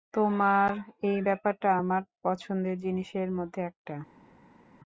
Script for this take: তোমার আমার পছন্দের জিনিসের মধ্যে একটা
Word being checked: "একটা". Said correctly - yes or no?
yes